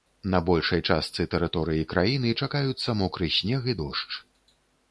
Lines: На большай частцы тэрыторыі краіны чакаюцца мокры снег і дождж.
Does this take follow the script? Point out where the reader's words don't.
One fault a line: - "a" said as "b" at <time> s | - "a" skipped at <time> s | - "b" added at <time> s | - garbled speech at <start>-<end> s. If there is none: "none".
none